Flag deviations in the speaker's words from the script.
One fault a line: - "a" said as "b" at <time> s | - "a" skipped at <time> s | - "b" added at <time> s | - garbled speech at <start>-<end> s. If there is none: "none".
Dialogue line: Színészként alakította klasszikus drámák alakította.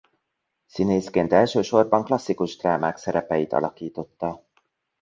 - "alakította" said as "elsősorban" at 1.3 s
- "szerepeit" added at 3.0 s